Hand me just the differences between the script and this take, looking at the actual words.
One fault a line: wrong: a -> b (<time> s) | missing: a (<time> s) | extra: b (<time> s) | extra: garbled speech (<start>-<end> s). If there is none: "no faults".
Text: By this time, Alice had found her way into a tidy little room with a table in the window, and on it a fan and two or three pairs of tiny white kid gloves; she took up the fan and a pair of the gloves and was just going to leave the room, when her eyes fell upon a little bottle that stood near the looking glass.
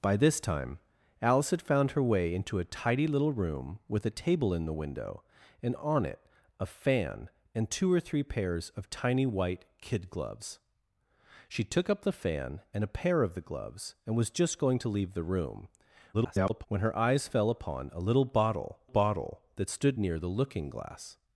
extra: garbled speech (16.1-16.7 s)
extra: bottle (18.8 s)